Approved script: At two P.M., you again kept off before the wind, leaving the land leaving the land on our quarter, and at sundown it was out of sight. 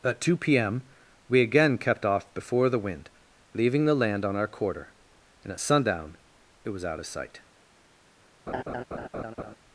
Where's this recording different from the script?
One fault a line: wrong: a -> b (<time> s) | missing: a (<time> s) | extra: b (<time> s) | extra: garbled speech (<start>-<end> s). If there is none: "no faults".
wrong: you -> we (1.3 s)
missing: leaving the land (4.2 s)